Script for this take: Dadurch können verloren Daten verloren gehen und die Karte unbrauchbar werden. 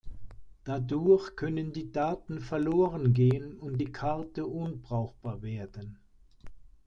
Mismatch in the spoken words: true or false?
true